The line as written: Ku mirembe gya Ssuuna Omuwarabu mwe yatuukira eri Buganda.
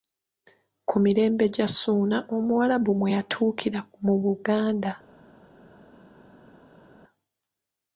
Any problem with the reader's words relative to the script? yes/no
yes